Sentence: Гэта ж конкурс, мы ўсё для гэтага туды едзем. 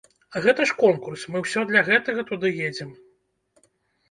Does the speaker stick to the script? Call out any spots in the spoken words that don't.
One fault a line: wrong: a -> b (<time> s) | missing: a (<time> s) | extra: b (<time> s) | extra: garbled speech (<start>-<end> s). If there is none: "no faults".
no faults